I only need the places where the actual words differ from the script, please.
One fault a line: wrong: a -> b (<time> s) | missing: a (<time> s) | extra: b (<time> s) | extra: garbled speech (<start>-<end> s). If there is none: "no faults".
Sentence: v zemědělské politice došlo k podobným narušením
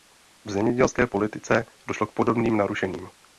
no faults